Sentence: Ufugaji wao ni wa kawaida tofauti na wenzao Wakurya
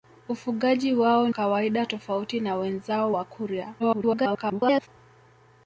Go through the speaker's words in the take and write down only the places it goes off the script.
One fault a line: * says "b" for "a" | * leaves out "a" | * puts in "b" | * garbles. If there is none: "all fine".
* leaves out "ni wa"
* garbles